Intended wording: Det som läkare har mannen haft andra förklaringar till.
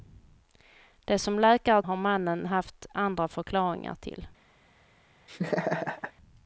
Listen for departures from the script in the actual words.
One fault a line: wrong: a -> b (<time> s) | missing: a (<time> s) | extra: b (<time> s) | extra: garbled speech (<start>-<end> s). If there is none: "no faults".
no faults